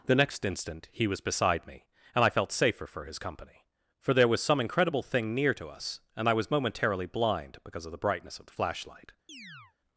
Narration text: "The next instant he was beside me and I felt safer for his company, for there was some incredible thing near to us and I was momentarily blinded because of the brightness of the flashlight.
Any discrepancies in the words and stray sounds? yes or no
yes